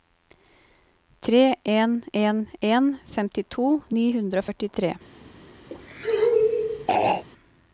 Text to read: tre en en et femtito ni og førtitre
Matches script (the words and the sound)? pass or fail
fail